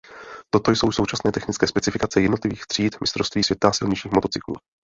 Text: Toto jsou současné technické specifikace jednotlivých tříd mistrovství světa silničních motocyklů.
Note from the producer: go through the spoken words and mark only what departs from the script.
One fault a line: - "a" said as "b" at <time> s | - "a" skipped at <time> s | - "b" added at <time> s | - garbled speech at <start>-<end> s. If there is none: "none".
none